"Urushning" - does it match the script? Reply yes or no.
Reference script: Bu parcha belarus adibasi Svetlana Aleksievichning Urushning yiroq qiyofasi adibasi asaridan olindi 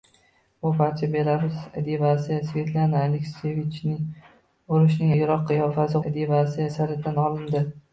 yes